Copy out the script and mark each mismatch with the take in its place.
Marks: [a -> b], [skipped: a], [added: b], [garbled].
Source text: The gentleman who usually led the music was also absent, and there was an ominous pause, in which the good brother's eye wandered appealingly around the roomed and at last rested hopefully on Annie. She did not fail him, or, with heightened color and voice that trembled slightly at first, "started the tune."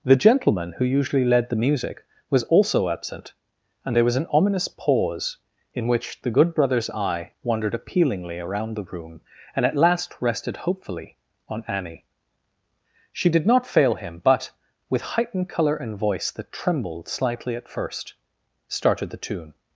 The gentleman who usually led the music was also absent, and there was an ominous pause, in which the good brother's eye wandered appealingly around the [roomed -> room] and at last rested hopefully on Annie. She did not fail him, [or, -> but] with heightened color and voice that trembled slightly at first, "started the tune."